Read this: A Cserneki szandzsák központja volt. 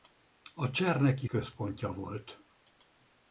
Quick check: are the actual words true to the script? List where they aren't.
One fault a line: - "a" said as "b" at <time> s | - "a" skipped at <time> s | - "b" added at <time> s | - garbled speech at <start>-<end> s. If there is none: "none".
- "szandzsák" skipped at 1.3 s